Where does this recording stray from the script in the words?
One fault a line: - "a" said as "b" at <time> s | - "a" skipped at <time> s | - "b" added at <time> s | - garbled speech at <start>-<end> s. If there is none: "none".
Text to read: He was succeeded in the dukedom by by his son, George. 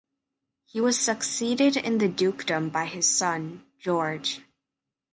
- "by" skipped at 2.8 s